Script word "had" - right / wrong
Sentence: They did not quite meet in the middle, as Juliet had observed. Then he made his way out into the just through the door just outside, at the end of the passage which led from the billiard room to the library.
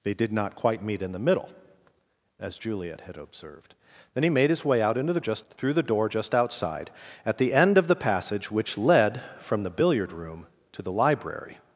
right